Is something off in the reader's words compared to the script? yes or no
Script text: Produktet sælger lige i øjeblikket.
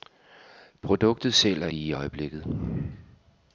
no